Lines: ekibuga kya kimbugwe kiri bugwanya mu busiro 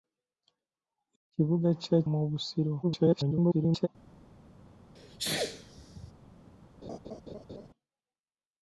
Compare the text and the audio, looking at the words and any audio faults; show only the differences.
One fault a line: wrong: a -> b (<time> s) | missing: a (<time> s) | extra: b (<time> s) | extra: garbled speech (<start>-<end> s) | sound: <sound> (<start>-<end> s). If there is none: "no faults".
missing: kimbugwe kiri bugwanya (2.0 s)
extra: garbled speech (2.8-3.9 s)
sound: sneeze (5.0-6.1 s)
sound: laugh (6.8-7.7 s)